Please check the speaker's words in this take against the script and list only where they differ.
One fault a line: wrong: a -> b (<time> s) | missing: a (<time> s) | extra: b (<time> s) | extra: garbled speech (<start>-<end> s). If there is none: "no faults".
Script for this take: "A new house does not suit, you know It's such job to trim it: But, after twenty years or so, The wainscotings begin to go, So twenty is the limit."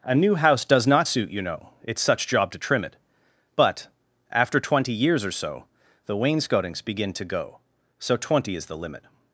no faults